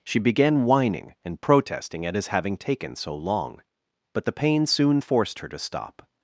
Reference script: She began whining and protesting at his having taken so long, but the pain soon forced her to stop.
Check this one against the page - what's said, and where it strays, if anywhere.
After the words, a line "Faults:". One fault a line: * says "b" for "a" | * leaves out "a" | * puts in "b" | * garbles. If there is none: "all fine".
She began whining and protesting at his having taken so long, but the pain soon forced her to stop.
Faults:
all fine